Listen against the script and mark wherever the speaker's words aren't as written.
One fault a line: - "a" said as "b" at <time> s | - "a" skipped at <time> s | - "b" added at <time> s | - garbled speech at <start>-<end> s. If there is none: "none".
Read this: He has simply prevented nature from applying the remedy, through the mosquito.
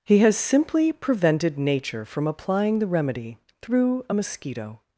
- "the" said as "a" at 4.1 s